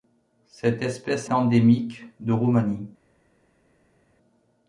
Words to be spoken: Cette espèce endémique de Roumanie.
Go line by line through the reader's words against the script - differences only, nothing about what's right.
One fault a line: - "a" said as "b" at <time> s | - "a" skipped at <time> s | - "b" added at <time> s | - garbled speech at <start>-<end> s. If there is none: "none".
none